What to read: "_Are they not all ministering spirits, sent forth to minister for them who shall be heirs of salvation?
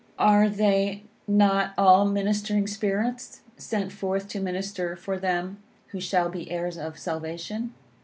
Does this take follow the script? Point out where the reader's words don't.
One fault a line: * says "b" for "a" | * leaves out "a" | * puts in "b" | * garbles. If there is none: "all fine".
all fine